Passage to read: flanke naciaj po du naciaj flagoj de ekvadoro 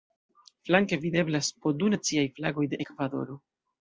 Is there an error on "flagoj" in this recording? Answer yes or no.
no